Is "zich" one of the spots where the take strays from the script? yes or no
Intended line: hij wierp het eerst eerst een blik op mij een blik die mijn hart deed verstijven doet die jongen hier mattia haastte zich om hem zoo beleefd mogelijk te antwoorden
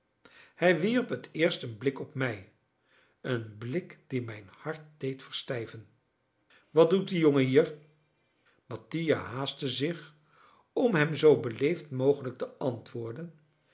no